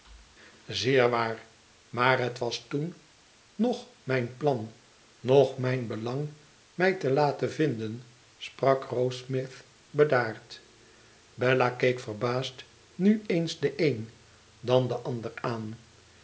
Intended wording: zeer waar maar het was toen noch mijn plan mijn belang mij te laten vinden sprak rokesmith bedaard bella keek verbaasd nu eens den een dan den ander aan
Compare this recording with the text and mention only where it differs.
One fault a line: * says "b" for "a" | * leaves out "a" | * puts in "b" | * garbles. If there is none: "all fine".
* puts in "noch"